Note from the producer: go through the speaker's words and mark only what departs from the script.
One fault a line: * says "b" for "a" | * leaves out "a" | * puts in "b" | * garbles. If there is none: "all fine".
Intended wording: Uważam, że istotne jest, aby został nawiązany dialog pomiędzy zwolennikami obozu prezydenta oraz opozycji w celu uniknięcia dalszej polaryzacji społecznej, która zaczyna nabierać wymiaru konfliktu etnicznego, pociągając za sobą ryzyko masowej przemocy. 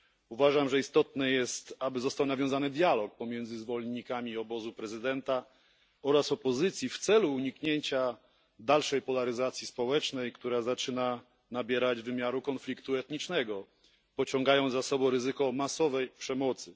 all fine